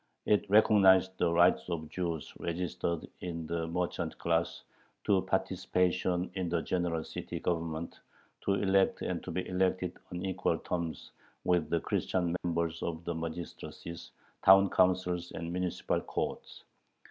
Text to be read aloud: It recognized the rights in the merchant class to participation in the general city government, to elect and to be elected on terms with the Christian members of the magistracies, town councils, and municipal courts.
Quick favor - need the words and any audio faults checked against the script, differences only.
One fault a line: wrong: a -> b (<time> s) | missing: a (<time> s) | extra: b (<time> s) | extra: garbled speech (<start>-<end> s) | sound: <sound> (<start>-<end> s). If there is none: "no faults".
extra: of Jews registered (1.7 s)
extra: equal (10.2 s)
sound: dropout (12.4-12.4 s)